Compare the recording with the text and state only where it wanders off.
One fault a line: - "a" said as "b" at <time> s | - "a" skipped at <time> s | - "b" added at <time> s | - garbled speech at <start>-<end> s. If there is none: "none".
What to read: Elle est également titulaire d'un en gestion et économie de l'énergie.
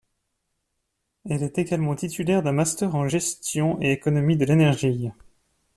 - "master" added at 2.5 s